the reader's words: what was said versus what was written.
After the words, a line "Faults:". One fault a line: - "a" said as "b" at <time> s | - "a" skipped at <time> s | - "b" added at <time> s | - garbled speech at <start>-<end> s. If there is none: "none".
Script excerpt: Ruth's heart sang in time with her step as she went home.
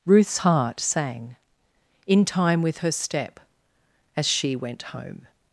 Ruth's heart sang in time with her step as she went home.
Faults:
none